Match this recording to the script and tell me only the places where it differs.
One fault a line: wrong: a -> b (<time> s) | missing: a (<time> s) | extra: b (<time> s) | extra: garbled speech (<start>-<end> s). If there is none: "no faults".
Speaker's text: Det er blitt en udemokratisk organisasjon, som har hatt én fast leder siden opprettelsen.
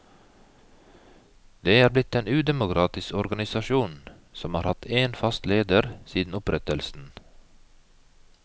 no faults